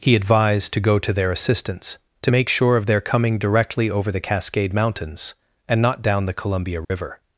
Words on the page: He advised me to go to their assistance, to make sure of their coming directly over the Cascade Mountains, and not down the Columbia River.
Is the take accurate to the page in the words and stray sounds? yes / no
no